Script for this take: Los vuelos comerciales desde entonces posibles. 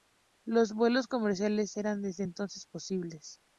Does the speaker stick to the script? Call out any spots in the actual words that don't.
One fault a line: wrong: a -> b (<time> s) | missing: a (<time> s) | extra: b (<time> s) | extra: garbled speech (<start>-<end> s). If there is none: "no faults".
extra: eran (1.8 s)